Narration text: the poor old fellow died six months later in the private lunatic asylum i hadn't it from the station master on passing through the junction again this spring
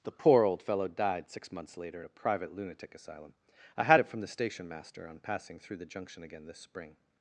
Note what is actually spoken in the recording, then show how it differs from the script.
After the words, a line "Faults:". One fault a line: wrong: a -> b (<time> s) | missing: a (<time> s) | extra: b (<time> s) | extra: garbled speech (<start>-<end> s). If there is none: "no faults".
the poor old fellow died six months later in a private lunatic asylum i had it from the station master on passing through the junction again this spring
Faults:
wrong: the -> a (2.0 s)
wrong: hadn't -> had (3.8 s)